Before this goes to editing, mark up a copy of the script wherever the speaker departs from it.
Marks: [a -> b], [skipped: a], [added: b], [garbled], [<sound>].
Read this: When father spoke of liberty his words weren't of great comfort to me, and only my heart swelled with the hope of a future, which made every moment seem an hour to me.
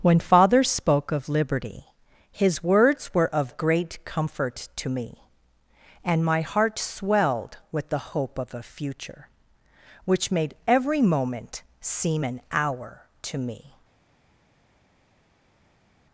When father spoke of liberty his words [weren't -> were] of great comfort to me, and [skipped: only] my heart swelled with the hope of a future, which made every moment seem an hour to me.